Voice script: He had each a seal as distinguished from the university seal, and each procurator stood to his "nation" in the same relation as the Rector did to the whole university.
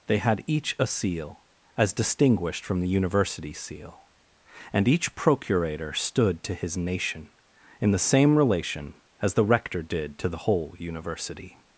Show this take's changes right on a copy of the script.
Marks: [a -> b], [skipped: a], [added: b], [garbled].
[He -> They] had each a seal as distinguished from the university seal, and each procurator stood to his "nation" in the same relation as the Rector did to the whole university.